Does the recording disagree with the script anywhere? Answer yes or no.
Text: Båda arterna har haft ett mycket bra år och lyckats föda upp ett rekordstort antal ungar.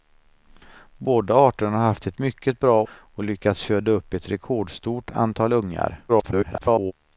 yes